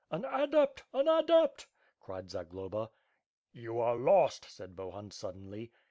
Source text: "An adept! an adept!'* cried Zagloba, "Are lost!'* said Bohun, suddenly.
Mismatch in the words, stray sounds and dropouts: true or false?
true